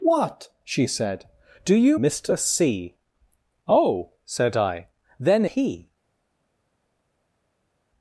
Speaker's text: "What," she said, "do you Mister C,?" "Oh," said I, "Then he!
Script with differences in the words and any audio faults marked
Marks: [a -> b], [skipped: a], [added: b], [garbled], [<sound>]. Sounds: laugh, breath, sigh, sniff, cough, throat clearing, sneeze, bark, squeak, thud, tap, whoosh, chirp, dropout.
"What," she said, "do you Mister C,?" "Oh," said I, "Then he!